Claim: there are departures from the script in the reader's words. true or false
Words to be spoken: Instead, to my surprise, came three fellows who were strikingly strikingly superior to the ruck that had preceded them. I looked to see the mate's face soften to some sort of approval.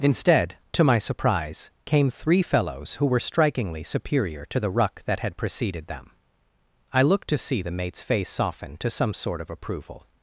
true